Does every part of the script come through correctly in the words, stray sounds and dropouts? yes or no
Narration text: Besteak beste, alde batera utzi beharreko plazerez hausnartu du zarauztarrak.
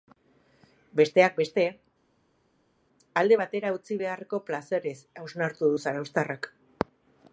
yes